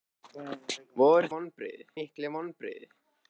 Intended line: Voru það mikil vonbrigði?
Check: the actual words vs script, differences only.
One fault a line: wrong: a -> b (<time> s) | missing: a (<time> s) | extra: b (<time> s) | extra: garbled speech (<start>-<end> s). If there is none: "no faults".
wrong: það -> vonbrigði (1.4 s)